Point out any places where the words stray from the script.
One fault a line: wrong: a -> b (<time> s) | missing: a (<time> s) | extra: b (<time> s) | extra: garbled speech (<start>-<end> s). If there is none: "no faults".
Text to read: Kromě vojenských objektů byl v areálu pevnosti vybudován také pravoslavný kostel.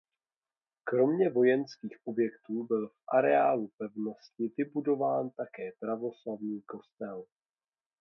no faults